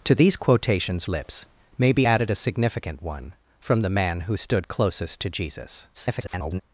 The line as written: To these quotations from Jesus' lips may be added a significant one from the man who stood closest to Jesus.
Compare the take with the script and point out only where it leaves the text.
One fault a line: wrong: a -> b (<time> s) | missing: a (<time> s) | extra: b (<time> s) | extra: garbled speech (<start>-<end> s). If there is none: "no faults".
missing: from Jesus (1.1 s)
extra: garbled speech (5.9-6.6 s)